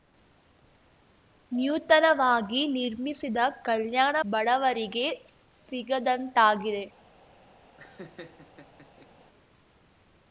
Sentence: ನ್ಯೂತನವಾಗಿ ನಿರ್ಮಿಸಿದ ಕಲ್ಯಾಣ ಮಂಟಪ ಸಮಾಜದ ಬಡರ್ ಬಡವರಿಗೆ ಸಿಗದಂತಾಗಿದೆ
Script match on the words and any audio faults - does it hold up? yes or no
no